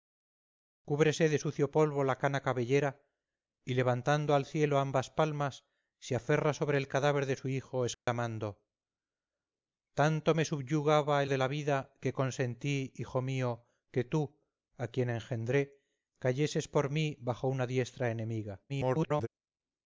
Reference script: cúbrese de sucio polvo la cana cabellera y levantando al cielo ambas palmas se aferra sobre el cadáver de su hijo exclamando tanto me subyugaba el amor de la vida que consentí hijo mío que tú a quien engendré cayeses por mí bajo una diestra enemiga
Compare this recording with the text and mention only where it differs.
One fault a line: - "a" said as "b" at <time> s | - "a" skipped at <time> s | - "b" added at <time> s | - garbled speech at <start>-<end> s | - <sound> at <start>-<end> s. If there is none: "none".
- dropout at 7.9-8.1 s
- "amor" skipped at 11.3 s
- garbled speech at 18.7-19.3 s